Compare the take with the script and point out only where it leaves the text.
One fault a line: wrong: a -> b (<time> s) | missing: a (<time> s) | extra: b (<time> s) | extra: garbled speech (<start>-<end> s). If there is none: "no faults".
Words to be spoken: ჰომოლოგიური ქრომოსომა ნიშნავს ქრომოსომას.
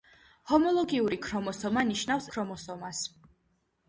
no faults